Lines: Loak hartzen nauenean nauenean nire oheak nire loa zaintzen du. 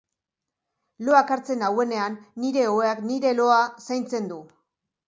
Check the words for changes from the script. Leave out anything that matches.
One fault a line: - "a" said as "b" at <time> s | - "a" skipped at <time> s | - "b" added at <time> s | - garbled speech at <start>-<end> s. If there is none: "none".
- "nauenean" skipped at 2.2 s